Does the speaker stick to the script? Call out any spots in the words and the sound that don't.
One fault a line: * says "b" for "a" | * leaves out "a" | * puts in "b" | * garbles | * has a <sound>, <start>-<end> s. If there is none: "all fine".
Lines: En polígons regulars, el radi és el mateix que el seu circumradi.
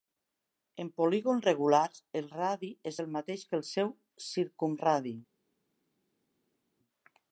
all fine